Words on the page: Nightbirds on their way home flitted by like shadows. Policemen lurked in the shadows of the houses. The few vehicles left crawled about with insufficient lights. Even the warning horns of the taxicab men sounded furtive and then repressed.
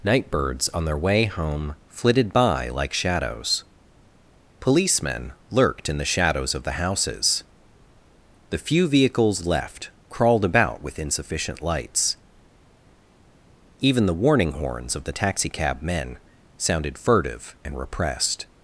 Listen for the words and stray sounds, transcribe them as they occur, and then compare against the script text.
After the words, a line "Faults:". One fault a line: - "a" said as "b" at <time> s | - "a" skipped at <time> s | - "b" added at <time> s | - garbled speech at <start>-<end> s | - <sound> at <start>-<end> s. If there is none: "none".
Nightbirds on their way home flitted by like shadows. Policemen lurked in the shadows of the houses. The few vehicles left crawled about with insufficient lights. Even the warning horns of the taxicab men sounded furtive and repressed.
Faults:
- "then" skipped at 17.8 s